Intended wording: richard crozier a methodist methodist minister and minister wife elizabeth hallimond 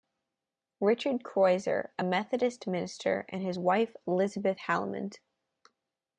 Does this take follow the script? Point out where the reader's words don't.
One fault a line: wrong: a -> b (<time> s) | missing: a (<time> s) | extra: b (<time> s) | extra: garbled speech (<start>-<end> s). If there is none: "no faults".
missing: methodist (2.7 s)
wrong: minister -> his (3.4 s)